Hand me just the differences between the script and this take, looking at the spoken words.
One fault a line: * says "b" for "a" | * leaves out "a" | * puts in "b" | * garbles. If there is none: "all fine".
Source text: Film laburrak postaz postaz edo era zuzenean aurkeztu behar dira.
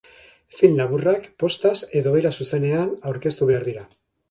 * leaves out "postaz"